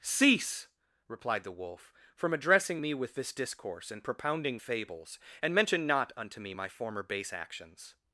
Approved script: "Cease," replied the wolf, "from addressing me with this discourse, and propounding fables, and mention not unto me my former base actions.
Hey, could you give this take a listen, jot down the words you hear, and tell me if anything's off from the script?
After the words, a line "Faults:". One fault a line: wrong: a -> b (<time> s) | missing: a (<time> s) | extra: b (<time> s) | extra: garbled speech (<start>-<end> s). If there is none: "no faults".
"Cease," replied the wolf, "from addressing me with this discourse, and propounding fables, and mention not unto me my former base actions.
Faults:
no faults